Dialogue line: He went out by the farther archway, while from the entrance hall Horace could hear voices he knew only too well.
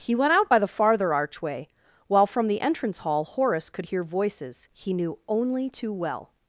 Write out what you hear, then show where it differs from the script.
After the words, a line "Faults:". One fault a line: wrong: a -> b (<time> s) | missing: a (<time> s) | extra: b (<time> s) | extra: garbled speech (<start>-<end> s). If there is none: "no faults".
He went out by the farther archway, while from the entrance hall Horace could hear voices he knew only too well.
Faults:
no faults